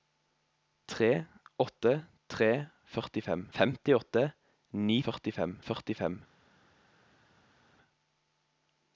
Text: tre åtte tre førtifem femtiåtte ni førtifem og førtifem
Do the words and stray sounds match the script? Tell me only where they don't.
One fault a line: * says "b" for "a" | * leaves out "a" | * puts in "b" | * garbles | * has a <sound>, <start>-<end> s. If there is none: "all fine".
all fine